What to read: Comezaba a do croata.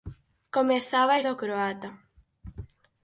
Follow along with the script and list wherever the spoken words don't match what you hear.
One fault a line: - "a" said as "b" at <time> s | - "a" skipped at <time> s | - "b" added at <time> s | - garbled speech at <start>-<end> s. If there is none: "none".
none